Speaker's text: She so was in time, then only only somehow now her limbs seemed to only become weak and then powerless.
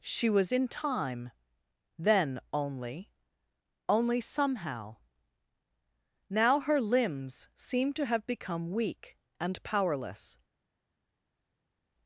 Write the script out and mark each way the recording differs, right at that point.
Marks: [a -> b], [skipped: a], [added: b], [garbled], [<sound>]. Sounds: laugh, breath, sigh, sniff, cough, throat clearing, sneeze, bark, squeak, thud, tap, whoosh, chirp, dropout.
She [skipped: so] was in time, then only only somehow now her limbs seemed to [only -> have] become weak and [skipped: then] powerless.